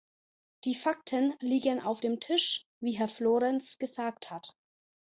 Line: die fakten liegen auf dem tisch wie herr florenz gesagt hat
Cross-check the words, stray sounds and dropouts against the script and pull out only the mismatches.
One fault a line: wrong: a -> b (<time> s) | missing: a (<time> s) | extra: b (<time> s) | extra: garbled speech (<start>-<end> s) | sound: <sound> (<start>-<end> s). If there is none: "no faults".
no faults